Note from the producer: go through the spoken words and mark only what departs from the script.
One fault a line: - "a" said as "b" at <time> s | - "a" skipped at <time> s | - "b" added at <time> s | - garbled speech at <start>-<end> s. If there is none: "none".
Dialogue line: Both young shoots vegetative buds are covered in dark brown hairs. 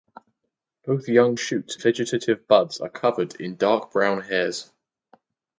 none